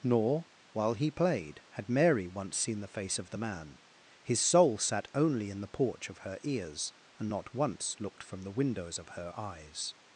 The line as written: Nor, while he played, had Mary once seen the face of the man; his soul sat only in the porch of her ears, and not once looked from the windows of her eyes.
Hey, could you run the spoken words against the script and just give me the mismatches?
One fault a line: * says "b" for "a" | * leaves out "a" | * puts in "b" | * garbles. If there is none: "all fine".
all fine